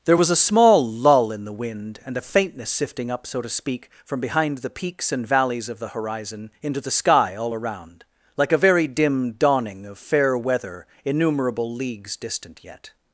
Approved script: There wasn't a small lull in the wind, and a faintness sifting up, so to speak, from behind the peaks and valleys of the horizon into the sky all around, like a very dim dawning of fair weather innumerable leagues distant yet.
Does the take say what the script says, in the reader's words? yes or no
no